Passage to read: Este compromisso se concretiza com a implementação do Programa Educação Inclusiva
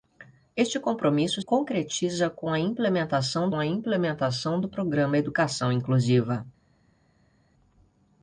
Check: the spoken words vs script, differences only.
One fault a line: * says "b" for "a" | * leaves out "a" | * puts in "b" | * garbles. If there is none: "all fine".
* leaves out "se"
* puts in "a implementação"